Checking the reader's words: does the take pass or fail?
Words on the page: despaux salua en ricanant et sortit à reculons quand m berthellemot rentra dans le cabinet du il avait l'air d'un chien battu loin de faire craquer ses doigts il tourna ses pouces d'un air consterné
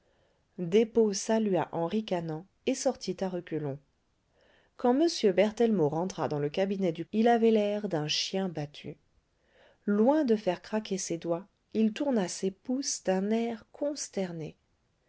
pass